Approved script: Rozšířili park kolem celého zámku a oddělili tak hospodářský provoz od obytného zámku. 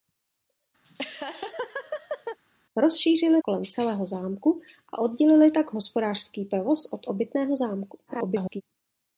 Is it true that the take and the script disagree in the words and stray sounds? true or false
true